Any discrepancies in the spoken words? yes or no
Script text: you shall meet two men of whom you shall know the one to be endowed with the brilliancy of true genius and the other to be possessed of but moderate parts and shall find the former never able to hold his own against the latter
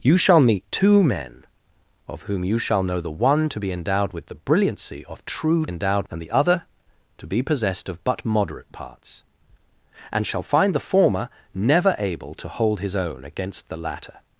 yes